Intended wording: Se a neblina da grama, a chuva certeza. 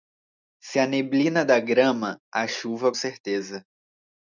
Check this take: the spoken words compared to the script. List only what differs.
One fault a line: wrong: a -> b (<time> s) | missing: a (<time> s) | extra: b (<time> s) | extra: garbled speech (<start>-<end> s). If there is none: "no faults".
no faults